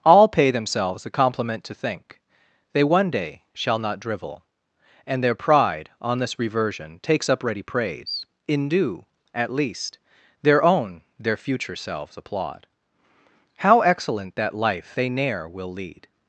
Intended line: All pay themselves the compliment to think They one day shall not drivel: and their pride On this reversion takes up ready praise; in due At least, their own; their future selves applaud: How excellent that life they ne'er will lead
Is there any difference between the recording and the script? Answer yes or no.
no